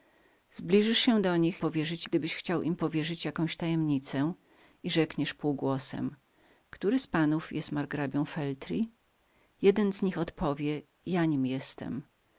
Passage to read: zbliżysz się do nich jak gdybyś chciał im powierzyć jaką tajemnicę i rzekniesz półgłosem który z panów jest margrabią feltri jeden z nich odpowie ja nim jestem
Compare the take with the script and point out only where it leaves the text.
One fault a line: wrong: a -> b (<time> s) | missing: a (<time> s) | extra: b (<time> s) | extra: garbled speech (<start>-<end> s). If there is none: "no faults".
wrong: jak -> powierzyć (1.6 s)